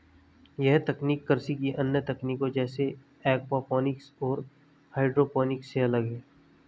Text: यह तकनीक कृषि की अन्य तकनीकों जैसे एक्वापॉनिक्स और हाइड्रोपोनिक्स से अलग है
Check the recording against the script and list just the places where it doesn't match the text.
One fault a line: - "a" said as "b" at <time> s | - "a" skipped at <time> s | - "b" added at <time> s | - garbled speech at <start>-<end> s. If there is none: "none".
none